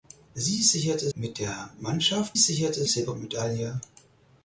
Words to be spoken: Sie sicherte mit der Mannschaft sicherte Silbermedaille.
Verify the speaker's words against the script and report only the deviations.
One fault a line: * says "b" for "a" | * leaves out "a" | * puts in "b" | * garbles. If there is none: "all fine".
all fine